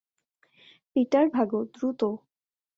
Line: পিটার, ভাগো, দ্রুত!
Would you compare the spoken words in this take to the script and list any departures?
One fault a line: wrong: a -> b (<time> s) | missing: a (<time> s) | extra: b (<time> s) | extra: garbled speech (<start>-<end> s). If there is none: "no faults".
no faults